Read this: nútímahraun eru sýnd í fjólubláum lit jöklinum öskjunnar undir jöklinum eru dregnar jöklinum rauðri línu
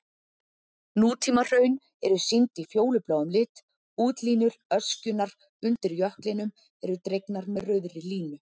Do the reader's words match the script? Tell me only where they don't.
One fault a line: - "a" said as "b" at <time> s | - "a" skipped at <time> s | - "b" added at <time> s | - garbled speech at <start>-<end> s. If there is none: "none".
- "jöklinum" said as "útlínur" at 4.1 s
- "jöklinum" said as "með" at 7.6 s